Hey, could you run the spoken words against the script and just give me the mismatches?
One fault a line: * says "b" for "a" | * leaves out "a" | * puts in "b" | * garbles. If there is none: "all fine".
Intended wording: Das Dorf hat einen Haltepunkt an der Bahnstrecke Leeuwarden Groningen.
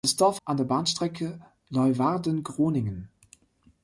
* leaves out "hat einen Haltepunkt"